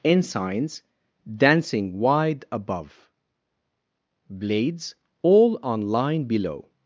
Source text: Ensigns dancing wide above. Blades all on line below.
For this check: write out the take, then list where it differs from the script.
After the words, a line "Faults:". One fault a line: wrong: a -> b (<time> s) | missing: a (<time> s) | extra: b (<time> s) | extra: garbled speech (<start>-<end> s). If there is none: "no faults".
Ensigns dancing wide above. Blades all on line below.
Faults:
no faults